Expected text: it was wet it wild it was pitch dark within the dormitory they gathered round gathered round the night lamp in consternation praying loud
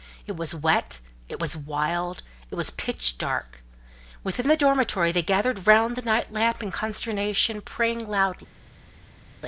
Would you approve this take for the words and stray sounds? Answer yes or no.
no